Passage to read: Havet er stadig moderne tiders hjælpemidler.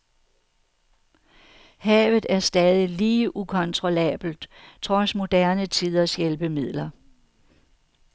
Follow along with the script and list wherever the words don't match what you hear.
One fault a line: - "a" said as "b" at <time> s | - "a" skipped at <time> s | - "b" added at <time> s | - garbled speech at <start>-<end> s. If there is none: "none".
- "lige ukontrollabelt trods" added at 2.9 s